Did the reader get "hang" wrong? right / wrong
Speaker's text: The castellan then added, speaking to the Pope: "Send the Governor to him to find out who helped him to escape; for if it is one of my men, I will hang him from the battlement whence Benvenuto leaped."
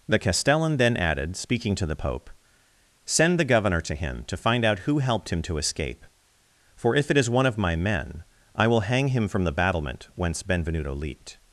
right